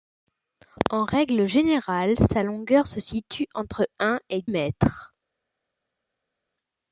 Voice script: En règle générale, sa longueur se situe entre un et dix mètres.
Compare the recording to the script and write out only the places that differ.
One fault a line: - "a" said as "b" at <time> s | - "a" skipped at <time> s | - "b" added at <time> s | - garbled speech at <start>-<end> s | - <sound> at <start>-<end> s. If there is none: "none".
- "dix" skipped at 4.4 s